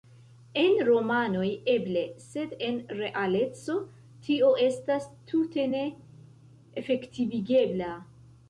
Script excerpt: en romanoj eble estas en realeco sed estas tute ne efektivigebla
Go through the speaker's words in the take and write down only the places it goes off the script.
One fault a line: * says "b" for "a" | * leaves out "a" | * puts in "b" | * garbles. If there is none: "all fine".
* says "sed" for "estas"
* says "tio" for "sed"